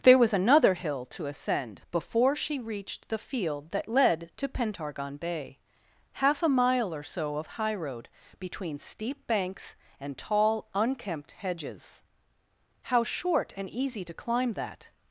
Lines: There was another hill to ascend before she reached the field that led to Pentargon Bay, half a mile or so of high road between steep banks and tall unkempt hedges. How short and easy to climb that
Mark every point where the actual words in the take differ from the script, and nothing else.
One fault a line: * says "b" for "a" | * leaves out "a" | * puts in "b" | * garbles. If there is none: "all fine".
all fine